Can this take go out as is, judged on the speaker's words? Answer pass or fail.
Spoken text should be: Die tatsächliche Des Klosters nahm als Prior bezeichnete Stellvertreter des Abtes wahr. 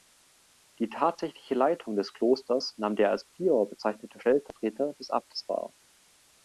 fail